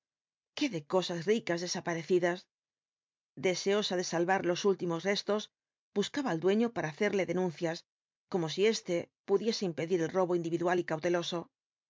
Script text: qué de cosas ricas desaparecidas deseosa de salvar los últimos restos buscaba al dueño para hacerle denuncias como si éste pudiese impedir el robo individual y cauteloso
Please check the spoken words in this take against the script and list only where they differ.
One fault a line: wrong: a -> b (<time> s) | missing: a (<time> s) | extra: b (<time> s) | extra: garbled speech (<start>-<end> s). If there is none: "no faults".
no faults